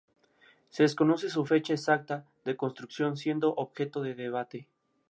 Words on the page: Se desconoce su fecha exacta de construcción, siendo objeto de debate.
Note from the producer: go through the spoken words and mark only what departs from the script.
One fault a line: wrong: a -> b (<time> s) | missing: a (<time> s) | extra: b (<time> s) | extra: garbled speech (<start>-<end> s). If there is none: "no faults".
no faults